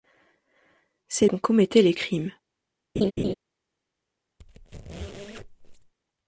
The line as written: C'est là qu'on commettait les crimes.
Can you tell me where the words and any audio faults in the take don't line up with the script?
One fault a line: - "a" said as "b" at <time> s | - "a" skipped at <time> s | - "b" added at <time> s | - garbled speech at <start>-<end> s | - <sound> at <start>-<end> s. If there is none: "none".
- "là" skipped at 1.3 s
- laugh at 3.0-3.3 s
- squeak at 4.4-5.9 s